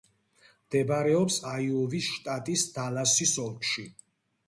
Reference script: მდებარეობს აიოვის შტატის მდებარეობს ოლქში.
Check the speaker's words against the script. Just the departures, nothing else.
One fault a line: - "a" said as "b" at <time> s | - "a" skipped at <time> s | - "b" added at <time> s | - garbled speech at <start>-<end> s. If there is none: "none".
- "მდებარეობს" said as "დალასის" at 2.8 s